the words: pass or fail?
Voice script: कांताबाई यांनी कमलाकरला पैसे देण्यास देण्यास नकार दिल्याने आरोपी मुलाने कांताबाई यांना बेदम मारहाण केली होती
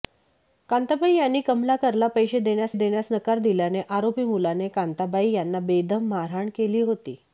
pass